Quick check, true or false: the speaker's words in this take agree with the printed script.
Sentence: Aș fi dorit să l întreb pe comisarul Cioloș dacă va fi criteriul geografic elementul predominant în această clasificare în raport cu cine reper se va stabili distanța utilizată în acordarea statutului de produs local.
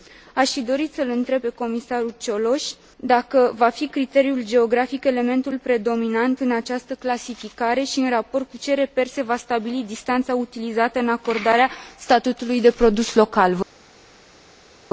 false